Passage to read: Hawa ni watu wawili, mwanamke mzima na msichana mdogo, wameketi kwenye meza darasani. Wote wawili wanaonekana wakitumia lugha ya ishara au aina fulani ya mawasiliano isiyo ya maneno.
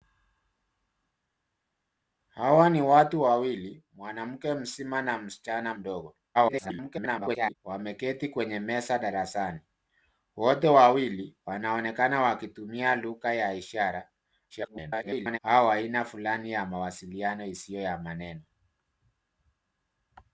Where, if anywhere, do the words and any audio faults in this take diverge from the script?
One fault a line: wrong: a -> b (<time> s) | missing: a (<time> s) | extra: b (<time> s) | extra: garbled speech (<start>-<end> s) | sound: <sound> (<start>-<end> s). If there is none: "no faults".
extra: garbled speech (6.3-7.5 s)
extra: garbled speech (14.5-15.4 s)